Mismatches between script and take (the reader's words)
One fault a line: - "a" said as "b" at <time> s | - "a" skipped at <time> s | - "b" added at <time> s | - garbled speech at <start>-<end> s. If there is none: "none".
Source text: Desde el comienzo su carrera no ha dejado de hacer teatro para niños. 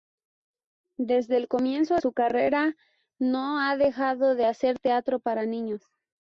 none